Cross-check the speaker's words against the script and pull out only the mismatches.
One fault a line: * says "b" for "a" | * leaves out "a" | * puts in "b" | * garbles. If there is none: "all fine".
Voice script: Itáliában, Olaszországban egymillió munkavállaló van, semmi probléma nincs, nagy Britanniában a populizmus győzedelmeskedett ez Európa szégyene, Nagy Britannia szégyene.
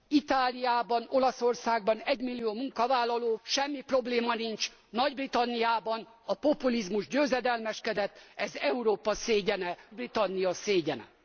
* leaves out "van"
* leaves out "Nagy"